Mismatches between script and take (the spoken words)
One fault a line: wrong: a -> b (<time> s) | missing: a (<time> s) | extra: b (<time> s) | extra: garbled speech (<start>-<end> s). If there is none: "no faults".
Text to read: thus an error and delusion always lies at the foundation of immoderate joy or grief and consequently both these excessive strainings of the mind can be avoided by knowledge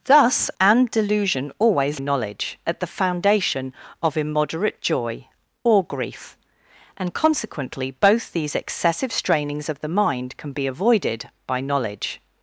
missing: an error (0.5 s)
wrong: lies -> knowledge (2.0 s)